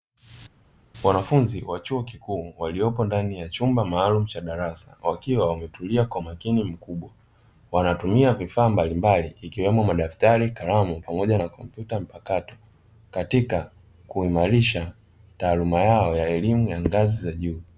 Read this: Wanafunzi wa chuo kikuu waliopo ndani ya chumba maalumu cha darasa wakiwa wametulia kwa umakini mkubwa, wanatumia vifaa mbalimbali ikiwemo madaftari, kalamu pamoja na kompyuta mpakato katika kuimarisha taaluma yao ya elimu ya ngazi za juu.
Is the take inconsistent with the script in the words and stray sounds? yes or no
no